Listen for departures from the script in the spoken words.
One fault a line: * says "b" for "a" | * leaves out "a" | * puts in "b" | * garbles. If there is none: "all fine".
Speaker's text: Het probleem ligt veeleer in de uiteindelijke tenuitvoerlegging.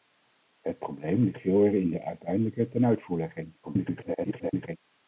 * garbles